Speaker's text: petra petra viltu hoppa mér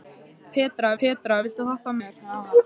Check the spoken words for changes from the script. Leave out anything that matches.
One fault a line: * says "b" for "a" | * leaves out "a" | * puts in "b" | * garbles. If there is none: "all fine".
all fine